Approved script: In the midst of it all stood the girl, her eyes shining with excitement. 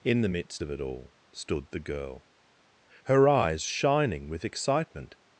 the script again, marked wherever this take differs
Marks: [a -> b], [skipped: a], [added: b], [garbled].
In the midst of it all stood the girl, her eyes shining with excitement.